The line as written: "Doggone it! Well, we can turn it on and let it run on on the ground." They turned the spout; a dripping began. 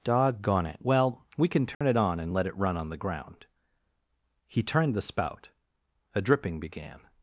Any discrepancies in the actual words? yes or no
yes